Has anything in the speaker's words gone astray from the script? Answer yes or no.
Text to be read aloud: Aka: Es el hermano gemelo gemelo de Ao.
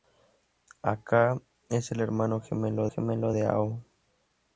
no